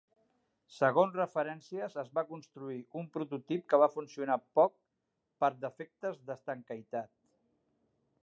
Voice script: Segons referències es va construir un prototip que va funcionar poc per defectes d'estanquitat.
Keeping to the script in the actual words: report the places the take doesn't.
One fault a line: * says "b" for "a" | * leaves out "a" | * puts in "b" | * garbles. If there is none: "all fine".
all fine